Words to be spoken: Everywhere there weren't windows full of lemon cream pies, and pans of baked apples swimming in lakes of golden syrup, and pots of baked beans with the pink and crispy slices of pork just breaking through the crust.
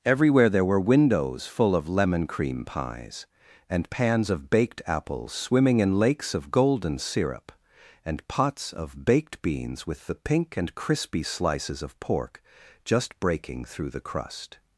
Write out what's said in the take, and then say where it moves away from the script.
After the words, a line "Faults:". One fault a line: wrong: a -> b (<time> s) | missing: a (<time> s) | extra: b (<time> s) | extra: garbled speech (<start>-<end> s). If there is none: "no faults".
Everywhere there were windows full of lemon cream pies, and pans of baked apples swimming in lakes of golden syrup, and pots of baked beans with the pink and crispy slices of pork just breaking through the crust.
Faults:
wrong: weren't -> were (0.7 s)